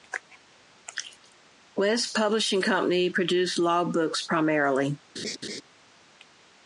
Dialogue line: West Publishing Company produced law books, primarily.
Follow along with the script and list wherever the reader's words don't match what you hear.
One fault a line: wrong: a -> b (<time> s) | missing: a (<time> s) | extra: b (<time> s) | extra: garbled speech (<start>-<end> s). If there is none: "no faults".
no faults